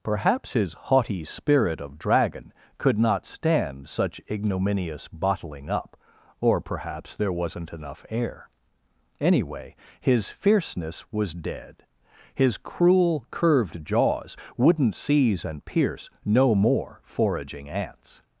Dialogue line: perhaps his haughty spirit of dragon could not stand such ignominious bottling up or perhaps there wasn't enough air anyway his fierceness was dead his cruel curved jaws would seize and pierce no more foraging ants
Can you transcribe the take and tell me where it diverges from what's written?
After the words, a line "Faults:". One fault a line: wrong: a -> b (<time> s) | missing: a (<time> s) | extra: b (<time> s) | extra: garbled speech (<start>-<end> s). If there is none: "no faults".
perhaps his haughty spirit of dragon could not stand such ignominious bottling up or perhaps there wasn't enough air anyway his fierceness was dead his cruel curved jaws wouldn't seize and pierce no more foraging ants
Faults:
wrong: would -> wouldn't (14.6 s)